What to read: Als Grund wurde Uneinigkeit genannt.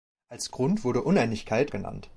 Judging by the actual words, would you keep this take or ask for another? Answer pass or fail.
pass